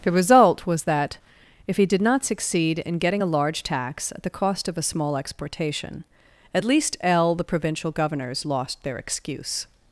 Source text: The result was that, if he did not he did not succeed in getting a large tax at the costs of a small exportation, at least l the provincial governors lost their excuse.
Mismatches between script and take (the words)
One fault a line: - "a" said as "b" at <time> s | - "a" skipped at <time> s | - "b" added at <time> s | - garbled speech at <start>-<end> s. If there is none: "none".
- "he did not" skipped at 2.2 s
- "costs" said as "cost" at 4.3 s